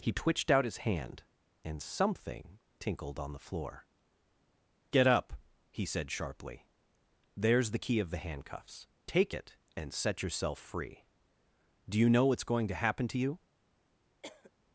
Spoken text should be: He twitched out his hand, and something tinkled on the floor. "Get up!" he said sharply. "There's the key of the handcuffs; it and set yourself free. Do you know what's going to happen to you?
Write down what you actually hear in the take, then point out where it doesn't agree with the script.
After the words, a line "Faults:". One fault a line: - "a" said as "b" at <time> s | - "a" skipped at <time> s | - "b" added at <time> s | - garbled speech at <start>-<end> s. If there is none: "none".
He twitched out his hand, and something tinkled on the floor. "Get up!" he said sharply. "There's the key of the handcuffs; take it and set yourself free. Do you know what's going to happen to you?
Faults:
- "take" added at 9.1 s